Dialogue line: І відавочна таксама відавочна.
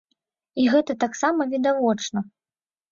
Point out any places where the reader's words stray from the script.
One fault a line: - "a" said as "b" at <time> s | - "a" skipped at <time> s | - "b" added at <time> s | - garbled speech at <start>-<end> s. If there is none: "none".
- "відавочна" said as "гэта" at 0.8 s